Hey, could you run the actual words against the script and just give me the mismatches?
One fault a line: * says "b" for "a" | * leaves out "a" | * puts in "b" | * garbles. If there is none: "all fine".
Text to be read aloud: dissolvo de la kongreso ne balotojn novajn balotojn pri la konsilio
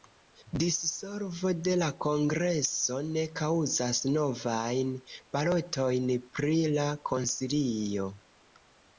* says "kaŭzas" for "balotojn"